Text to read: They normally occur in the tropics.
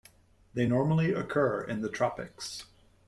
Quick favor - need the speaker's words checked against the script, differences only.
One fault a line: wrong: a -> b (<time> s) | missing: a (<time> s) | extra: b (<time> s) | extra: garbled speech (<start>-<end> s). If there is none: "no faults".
no faults